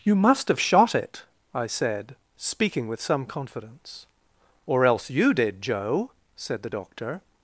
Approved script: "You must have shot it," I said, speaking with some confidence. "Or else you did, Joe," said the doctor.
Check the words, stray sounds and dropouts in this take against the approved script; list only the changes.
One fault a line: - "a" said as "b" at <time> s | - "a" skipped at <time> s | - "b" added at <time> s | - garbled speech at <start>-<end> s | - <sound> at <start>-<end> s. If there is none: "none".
none